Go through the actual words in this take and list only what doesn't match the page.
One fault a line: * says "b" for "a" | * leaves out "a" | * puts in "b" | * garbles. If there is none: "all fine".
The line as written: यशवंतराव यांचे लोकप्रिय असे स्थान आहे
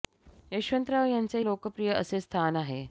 all fine